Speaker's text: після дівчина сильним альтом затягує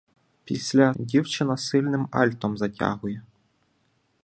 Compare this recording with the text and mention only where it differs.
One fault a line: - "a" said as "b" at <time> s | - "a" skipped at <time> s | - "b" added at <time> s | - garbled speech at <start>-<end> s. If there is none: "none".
none